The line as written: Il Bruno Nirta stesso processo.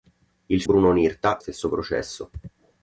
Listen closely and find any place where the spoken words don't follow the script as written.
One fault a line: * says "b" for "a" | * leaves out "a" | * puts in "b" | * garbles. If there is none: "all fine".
all fine